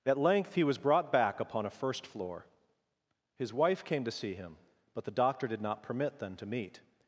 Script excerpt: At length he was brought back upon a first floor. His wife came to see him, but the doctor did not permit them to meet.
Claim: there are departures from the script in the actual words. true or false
false